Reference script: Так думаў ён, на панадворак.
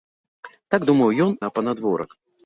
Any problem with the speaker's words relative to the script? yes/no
no